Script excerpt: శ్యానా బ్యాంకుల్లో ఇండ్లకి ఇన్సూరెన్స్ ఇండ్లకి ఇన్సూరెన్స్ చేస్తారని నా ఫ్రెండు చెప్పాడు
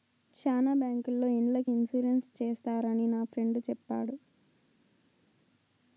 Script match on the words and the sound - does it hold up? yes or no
no